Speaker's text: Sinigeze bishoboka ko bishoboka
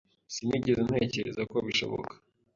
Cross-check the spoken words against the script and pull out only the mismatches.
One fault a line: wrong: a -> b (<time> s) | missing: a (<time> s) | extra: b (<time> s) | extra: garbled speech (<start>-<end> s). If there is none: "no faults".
wrong: bishoboka -> ntekereza (0.9 s)